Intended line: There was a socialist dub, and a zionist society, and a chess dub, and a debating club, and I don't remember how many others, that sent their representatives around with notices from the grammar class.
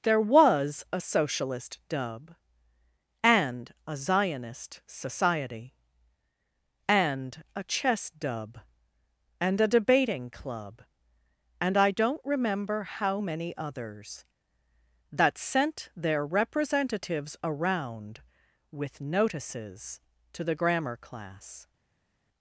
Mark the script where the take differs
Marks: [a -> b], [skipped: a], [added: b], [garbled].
There was a socialist dub, and a zionist society, and a chess dub, and a debating club, and I don't remember how many others, that sent their representatives around with notices [from -> to] the grammar class.